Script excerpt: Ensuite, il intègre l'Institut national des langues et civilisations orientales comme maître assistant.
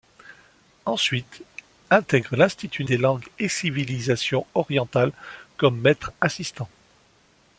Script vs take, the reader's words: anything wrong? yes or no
yes